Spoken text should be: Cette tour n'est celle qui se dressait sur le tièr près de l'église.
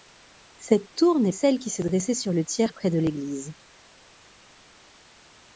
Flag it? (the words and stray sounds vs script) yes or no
no